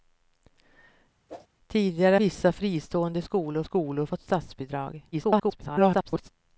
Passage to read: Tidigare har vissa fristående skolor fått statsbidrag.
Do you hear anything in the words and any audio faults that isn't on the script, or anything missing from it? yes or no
yes